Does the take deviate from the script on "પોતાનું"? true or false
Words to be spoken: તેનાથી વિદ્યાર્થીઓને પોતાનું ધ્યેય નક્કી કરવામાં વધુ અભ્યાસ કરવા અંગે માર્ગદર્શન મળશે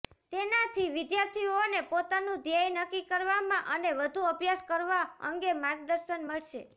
false